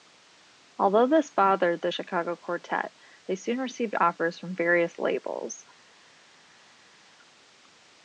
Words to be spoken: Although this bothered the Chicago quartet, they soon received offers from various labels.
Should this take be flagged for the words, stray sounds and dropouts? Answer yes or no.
no